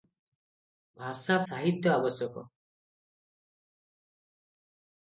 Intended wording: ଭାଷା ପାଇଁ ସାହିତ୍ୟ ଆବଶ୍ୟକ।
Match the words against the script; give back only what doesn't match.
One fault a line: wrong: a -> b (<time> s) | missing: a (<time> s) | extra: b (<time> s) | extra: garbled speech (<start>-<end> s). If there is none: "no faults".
missing: ପାଇଁ (1.4 s)